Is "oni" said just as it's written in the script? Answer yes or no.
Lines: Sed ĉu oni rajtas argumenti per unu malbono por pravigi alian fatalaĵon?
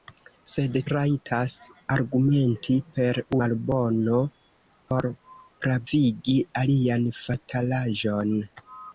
no